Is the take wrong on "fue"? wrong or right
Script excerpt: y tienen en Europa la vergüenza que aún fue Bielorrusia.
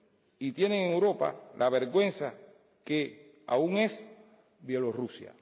wrong